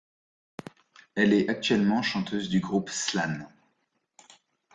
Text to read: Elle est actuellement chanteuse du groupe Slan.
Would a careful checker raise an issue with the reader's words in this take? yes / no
no